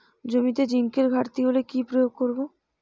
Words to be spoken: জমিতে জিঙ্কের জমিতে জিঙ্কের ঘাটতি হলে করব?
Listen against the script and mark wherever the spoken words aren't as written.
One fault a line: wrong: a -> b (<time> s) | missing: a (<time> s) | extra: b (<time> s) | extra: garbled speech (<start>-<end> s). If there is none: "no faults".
wrong: জমিতে জিঙ্কের ঘাটতি হলে -> ঘাটতি হলে কি প্রয়োগ (1.1 s)